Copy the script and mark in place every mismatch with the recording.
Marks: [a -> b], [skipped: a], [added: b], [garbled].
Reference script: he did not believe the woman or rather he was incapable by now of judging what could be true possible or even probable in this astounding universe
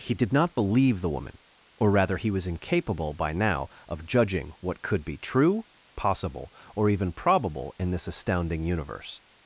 he did not believe the woman or rather he was incapable by now of judging what could be true possible or even probable in this astounding universe